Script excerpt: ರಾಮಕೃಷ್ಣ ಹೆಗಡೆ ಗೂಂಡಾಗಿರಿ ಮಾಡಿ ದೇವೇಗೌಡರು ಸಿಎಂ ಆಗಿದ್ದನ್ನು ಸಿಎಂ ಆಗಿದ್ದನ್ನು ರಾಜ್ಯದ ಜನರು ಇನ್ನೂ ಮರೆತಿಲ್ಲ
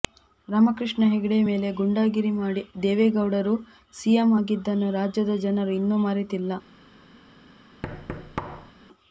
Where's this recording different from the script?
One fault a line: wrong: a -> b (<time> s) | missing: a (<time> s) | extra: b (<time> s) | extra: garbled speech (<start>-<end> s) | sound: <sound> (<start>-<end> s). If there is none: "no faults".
extra: ಮೇಲೆ (1.5 s)
missing: ಸಿಎಂ ಆಗಿದ್ದನ್ನು (4.9 s)
sound: thud (7.8-8.7 s)